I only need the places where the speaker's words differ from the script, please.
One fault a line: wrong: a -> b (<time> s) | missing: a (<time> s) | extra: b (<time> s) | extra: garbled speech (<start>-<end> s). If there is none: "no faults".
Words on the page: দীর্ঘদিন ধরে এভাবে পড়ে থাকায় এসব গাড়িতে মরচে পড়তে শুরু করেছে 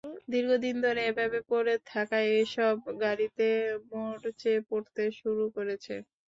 no faults